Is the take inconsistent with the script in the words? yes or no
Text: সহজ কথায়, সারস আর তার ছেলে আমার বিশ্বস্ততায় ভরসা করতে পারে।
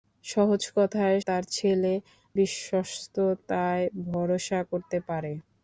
yes